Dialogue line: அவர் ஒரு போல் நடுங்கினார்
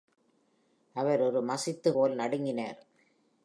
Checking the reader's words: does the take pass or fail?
fail